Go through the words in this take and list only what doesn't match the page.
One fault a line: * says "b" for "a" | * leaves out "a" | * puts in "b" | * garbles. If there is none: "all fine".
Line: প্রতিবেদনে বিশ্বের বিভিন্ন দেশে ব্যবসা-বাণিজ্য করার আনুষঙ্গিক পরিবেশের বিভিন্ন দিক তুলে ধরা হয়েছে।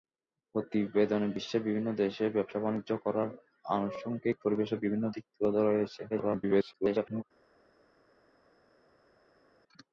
* garbles